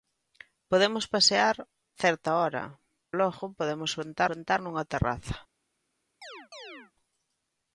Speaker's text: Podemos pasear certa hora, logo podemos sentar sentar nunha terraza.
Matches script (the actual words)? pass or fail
pass